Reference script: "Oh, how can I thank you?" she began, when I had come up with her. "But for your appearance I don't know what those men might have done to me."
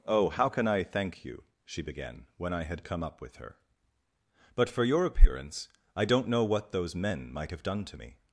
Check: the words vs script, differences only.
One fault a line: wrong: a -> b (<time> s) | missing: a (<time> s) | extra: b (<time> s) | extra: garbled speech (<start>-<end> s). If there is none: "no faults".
no faults